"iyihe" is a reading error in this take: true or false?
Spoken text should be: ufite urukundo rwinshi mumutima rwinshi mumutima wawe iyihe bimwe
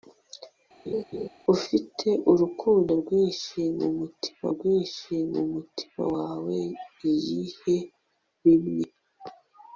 false